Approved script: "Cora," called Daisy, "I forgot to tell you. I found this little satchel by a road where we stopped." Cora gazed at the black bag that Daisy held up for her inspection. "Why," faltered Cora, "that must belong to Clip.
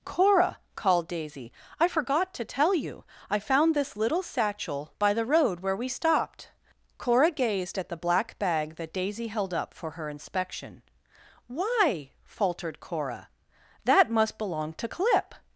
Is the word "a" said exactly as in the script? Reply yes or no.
no